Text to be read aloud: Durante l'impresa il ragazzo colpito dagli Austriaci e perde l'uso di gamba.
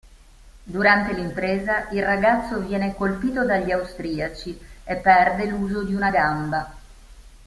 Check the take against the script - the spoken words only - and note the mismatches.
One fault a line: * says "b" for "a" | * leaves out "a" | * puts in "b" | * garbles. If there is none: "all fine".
* puts in "viene"
* puts in "una"